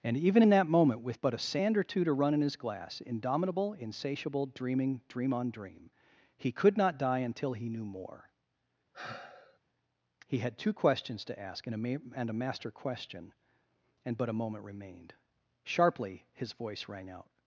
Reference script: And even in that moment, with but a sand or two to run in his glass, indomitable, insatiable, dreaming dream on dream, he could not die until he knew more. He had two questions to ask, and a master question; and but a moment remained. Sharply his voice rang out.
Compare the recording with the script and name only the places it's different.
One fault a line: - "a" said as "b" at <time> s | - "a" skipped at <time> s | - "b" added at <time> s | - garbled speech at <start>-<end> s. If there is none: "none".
- "ma and a" added at 11.8 s